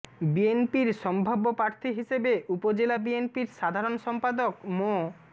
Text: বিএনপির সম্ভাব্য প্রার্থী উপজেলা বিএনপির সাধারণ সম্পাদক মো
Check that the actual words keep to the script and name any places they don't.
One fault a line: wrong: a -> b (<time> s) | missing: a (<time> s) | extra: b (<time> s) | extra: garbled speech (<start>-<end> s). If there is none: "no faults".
extra: হিসেবে (2.0 s)